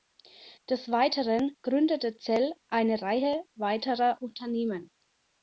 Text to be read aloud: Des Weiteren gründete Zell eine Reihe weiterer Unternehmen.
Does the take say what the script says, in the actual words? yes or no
yes